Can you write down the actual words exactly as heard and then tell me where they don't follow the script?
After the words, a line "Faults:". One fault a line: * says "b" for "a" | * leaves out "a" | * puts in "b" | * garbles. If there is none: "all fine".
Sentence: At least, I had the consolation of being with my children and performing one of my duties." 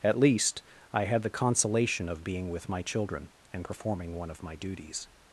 At least, I had the consolation of being with my children and performing one of my duties."
Faults:
all fine